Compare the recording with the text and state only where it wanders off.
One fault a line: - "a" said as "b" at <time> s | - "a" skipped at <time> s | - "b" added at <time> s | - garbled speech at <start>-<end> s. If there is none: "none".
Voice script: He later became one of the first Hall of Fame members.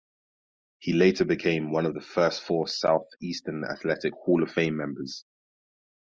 - "four Southeastern Athletic" added at 2.4 s